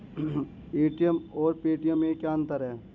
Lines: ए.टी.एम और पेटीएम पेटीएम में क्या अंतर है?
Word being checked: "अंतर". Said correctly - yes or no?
yes